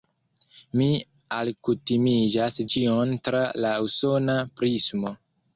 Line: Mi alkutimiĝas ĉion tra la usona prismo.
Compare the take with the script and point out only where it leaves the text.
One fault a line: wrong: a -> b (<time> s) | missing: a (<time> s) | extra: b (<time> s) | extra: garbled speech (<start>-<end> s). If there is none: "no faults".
no faults